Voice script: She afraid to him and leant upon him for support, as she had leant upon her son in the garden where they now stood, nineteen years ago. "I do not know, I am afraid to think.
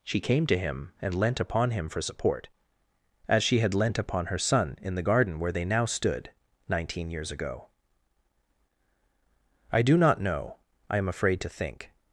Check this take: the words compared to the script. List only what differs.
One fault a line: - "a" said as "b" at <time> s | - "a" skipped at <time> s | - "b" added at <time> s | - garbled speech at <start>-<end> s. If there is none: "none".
- "afraid" said as "came" at 0.2 s